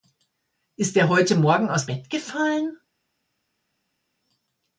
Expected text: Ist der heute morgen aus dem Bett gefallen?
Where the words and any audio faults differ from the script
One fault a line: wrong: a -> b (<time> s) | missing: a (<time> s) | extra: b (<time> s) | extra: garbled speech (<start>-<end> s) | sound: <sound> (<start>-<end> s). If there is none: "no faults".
missing: dem (1.9 s)